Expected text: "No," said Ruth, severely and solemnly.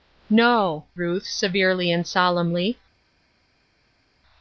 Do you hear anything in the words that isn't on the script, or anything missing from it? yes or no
yes